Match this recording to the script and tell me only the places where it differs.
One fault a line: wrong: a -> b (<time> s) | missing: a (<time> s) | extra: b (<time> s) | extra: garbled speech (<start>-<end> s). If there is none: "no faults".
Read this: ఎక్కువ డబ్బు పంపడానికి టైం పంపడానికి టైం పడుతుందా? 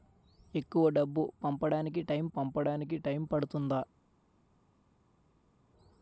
no faults